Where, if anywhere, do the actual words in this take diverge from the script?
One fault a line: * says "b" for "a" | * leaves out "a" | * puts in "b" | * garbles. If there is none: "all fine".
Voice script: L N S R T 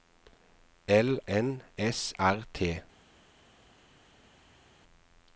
all fine